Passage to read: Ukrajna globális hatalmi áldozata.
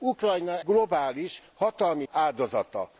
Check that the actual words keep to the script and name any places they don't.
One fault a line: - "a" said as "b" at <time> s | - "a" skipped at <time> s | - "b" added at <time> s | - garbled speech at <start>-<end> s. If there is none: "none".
none